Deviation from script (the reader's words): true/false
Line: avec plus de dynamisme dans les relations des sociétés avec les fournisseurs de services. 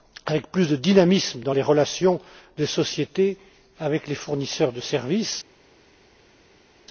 false